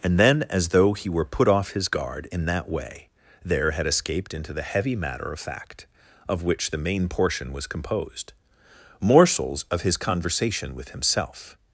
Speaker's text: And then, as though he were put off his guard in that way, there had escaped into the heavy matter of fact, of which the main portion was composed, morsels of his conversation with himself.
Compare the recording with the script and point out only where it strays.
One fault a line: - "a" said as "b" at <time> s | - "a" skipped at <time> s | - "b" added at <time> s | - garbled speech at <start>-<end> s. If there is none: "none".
none